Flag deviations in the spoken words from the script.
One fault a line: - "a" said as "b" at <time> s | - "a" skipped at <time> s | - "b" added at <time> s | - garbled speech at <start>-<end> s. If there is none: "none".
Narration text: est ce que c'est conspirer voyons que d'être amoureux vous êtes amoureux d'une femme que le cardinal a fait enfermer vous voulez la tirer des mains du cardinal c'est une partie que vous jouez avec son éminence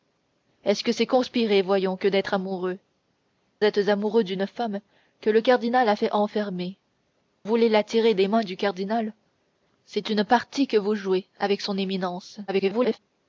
- "vous" skipped at 2.8 s
- "vous" skipped at 6.8 s
- garbled speech at 12.5-13.0 s